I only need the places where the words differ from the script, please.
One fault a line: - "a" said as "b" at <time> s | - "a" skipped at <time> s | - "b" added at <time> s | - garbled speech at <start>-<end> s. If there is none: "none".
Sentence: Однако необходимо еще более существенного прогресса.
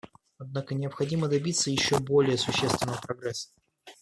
- "добиться" added at 1.3 s